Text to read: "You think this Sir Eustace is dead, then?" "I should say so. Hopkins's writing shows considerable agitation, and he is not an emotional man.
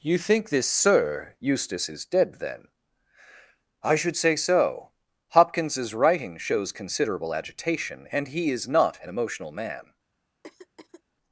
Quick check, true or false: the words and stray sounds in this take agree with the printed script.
false